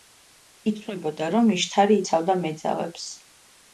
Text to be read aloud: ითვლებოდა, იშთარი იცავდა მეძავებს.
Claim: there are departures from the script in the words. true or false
true